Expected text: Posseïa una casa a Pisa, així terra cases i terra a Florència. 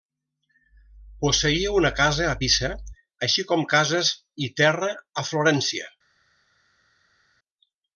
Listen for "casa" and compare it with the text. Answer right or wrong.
right